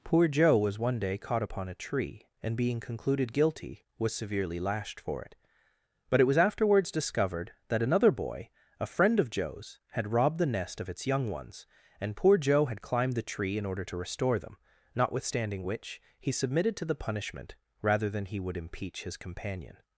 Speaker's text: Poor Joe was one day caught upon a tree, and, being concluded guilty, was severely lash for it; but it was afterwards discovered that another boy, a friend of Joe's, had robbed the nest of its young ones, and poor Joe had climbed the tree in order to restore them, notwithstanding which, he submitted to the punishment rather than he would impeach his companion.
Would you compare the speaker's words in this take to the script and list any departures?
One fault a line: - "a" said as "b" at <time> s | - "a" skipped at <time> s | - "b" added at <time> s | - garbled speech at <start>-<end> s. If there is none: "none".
- "lash" said as "lashed" at 4.6 s